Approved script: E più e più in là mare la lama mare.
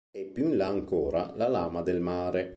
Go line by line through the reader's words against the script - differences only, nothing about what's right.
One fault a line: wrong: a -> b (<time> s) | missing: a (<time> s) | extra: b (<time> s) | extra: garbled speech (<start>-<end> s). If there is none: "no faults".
missing: e più (0.5 s)
wrong: mare -> ancora (0.7 s)
extra: del (1.8 s)